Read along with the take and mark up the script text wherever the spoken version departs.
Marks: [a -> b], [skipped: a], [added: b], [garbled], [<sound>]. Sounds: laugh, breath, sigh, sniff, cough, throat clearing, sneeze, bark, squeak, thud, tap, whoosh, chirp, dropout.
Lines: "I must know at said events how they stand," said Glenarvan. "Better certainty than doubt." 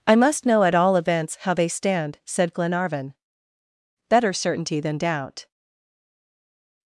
"I must know at [said -> all] events how they stand," said Glenarvan. "Better certainty than doubt."